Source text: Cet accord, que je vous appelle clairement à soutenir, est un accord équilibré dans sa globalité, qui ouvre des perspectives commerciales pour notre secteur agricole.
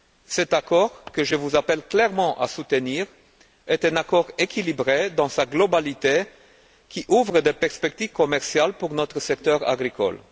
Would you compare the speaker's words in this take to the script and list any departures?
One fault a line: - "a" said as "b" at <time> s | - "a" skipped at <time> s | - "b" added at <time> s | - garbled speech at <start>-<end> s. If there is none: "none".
none